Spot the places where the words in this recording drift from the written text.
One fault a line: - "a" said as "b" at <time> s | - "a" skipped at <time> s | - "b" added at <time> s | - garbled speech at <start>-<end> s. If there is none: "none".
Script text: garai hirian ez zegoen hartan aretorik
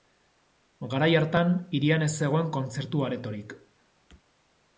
- "hartan" added at 1.2 s
- "hartan" said as "kontzertu" at 2.6 s